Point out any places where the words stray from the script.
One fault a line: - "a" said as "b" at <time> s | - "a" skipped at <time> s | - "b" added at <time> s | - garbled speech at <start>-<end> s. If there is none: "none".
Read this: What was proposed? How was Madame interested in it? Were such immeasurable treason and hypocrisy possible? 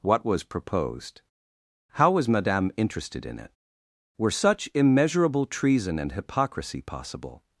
none